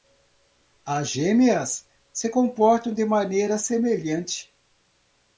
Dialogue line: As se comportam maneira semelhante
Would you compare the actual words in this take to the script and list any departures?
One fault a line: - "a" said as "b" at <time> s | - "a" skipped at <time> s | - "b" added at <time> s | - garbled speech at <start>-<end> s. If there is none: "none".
- "gêmeas" added at 1.1 s
- "de" added at 2.9 s